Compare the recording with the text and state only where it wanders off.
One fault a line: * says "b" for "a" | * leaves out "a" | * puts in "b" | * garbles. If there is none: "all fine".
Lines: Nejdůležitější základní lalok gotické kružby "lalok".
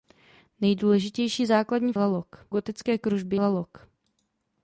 all fine